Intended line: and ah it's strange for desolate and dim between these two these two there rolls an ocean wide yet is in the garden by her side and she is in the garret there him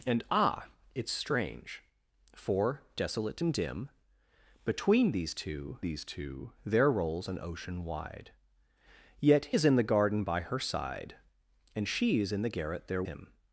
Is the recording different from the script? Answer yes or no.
no